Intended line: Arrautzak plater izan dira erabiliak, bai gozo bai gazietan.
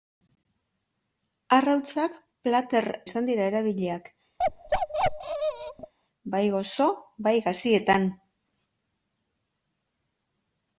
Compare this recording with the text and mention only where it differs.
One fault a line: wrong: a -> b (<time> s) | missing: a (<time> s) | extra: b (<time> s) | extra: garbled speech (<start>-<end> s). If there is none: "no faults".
no faults